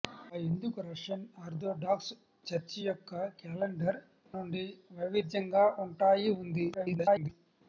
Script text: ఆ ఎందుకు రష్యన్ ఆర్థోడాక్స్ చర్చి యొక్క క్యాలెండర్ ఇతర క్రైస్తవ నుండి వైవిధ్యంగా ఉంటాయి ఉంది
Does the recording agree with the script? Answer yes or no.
no